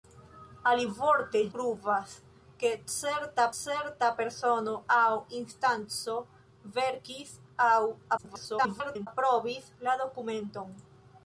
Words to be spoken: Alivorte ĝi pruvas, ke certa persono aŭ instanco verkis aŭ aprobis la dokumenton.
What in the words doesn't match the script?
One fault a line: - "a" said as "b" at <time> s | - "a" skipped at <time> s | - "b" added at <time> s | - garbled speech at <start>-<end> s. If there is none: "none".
- "ĝi" skipped at 1.4 s
- "certa" added at 3.6 s
- garbled speech at 8.2-9.1 s